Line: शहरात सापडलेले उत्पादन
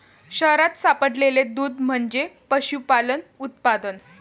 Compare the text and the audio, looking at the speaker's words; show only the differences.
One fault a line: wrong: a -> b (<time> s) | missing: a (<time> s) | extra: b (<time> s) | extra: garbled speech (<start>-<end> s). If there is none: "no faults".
extra: दूध म्हणजे पशुपालन (1.5 s)